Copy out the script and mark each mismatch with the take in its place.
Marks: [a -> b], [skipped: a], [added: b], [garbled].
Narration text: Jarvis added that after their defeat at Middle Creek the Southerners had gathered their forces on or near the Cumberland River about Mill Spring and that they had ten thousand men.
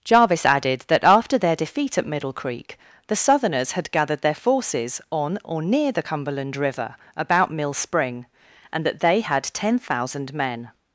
Jarvis added that after their defeat at Middle Creek the Southerners had gathered their forces on or near the Cumberland River about Mill Spring and that they had ten thousand men.